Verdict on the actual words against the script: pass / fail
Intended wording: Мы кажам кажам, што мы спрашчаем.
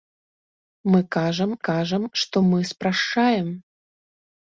pass